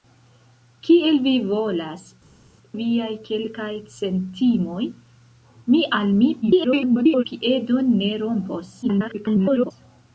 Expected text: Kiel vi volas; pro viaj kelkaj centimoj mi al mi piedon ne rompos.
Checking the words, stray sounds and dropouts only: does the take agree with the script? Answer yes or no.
no